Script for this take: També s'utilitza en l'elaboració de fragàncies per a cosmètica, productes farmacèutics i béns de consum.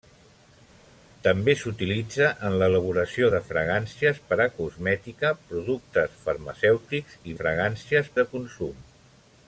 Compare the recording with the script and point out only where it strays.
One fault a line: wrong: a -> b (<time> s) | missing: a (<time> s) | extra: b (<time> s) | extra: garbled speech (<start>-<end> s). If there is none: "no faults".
wrong: béns -> fragàncies (7.4 s)